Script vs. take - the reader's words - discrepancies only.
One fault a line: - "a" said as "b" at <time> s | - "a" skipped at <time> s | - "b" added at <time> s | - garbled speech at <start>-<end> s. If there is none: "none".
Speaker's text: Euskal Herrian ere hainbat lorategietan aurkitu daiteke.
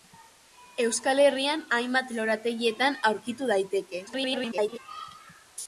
- "ere" skipped at 1.6 s
- garbled speech at 4.1-4.8 s